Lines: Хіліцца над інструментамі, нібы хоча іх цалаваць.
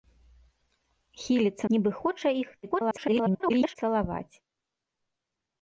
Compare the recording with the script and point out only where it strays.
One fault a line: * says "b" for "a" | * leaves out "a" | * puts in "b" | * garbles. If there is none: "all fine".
* leaves out "над інструментамі"
* garbles